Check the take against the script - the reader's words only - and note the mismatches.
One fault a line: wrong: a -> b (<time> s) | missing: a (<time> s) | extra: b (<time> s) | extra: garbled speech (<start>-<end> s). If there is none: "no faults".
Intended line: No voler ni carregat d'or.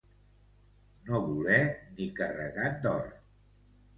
no faults